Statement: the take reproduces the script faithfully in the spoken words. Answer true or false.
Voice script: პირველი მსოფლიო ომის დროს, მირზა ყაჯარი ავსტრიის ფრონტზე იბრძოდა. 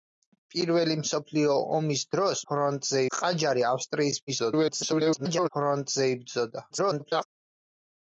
false